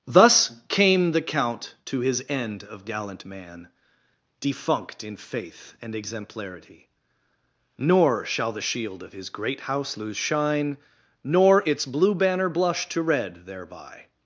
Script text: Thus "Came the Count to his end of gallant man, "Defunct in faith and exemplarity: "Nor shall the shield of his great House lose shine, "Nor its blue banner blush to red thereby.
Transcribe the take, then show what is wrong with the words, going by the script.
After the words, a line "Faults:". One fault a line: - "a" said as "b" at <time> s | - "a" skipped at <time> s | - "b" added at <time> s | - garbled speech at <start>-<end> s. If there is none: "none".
Thus "Came the Count to his end of gallant man, "Defunct in faith and exemplarity: "Nor shall the shield of his great House lose shine, "Nor its blue banner blush to red thereby.
Faults:
none